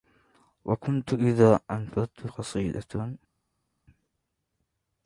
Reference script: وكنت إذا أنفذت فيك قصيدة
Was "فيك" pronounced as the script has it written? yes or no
no